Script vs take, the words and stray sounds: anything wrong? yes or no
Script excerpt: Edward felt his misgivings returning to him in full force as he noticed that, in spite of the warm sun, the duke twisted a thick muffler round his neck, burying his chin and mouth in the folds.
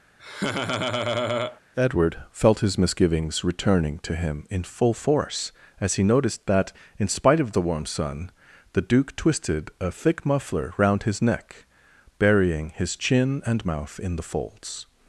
yes